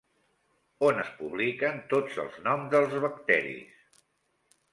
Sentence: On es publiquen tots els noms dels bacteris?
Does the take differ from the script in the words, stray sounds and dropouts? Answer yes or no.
no